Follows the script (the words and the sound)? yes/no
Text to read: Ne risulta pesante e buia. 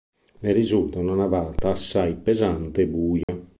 no